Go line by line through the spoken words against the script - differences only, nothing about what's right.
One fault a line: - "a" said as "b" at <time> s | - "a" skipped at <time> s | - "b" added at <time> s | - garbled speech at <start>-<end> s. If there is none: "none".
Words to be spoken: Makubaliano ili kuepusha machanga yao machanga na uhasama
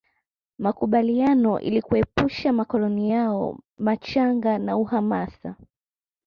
- "machanga" said as "makoloni" at 2.5 s